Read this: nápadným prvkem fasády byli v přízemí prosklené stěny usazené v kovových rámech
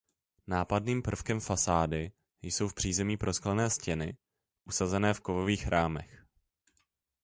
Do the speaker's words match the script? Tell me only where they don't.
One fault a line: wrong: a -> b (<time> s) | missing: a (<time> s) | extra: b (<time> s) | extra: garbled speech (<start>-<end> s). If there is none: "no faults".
wrong: byli -> jsou (2.4 s)